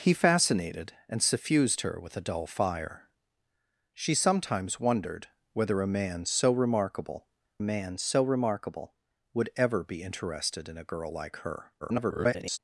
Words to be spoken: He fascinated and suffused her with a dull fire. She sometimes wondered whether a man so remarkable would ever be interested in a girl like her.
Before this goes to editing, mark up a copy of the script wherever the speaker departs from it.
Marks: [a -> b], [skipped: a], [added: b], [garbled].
He fascinated and suffused her with a dull fire. She sometimes wondered whether a man so remarkable [added: man so remarkable] would ever be interested in a girl like her. [garbled]